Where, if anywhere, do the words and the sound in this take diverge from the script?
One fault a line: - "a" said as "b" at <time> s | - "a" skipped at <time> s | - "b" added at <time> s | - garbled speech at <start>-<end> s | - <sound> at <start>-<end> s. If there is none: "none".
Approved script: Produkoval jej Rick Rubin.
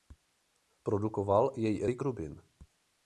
none